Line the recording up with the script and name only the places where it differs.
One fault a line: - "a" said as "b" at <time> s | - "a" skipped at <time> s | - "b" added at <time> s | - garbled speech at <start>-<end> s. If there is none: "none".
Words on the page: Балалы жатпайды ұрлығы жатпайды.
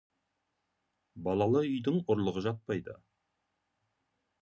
- "жатпайды" said as "үйдің" at 1.7 s